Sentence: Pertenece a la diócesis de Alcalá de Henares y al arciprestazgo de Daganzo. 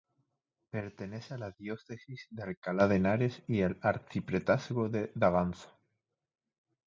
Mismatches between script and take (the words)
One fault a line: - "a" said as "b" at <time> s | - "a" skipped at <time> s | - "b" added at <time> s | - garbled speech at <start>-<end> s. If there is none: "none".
none